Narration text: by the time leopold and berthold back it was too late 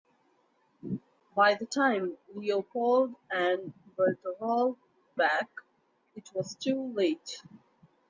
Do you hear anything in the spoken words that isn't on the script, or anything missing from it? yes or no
no